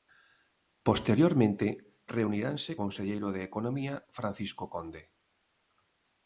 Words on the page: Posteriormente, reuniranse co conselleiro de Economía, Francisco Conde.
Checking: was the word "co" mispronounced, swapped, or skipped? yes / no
yes